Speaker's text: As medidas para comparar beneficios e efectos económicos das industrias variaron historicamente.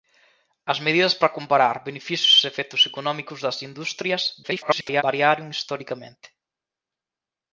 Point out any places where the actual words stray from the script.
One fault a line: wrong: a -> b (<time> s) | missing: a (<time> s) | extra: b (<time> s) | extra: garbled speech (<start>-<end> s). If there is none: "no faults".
extra: garbled speech (4.4-5.0 s)